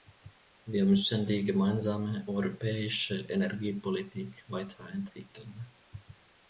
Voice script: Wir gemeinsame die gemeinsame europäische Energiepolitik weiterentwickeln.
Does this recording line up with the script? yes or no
no